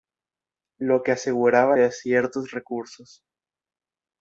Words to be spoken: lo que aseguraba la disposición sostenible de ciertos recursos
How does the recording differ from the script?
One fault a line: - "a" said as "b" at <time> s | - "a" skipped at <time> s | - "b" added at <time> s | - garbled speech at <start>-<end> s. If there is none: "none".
- "la disposición sostenible" skipped at 1.8 s